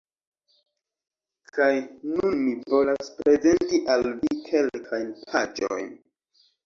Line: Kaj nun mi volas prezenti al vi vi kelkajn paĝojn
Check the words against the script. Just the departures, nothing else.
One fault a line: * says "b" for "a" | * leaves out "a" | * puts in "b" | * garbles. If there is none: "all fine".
* leaves out "vi"